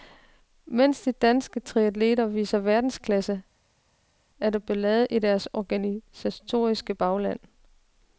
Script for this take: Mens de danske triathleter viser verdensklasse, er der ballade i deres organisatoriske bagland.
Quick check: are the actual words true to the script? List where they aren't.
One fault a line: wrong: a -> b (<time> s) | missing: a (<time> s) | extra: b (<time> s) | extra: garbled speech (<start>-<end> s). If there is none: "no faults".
no faults